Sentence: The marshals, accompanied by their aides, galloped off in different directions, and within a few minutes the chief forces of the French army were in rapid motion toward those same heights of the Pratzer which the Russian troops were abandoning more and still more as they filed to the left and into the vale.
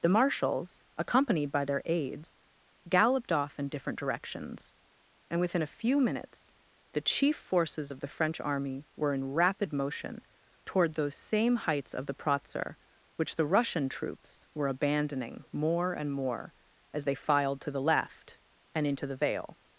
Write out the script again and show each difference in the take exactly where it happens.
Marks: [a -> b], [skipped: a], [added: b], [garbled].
The marshals, accompanied by their aides, galloped off in different directions, and within a few minutes the chief forces of the French army were in rapid motion toward those same heights of the Pratzer which the Russian troops were abandoning more and [skipped: still] more as they filed to the left and into the vale.